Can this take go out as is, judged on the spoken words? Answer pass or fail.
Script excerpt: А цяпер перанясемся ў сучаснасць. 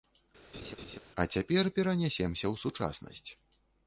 pass